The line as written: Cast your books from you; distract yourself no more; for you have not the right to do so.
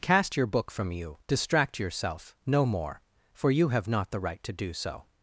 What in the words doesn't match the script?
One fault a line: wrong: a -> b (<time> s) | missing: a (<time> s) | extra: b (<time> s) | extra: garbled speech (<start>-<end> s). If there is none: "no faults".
wrong: books -> book (0.5 s)